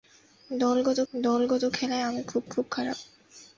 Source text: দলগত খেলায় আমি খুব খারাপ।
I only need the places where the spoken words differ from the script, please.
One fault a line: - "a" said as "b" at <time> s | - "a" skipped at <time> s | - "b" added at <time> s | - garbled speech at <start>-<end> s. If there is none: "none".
- "দলগত" added at 1.1 s
- "খুব" added at 2.5 s